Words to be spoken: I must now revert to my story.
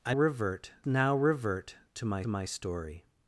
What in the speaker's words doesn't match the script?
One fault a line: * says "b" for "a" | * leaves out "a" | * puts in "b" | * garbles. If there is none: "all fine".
* says "revert" for "must"
* puts in "my"